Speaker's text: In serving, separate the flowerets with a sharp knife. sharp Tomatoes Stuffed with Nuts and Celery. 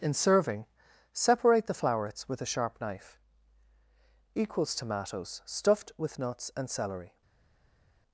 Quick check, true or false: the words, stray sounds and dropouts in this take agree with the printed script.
false